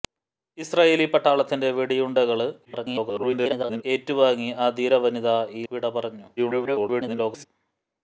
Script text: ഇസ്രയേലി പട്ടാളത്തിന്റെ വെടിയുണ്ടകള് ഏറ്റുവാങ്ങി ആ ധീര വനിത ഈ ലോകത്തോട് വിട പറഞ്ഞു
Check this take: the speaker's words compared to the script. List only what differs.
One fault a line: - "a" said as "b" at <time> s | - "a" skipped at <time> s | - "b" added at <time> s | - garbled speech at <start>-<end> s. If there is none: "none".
- garbled speech at 2.6-3.8 s
- "ലോകത്തോട്" skipped at 5.6 s
- garbled speech at 6.4-7.5 s